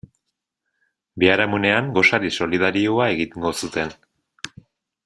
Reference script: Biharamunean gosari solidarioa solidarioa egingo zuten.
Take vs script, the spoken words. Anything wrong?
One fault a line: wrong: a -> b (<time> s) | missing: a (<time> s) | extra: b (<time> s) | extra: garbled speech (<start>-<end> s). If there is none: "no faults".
missing: solidarioa (3.1 s)